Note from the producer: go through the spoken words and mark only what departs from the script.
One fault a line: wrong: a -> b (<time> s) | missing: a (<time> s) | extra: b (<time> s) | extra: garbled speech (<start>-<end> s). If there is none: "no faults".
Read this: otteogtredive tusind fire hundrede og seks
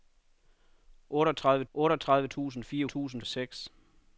extra: otteogtredive (1.7 s)
wrong: hundrede -> tusind (2.9 s)